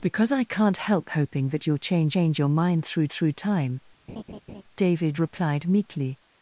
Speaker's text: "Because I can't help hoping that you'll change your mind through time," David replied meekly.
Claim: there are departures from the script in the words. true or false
true